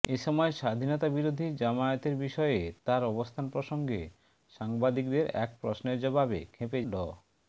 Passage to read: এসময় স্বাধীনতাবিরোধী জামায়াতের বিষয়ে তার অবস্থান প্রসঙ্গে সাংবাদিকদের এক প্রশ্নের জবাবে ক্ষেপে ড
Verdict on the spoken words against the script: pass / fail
pass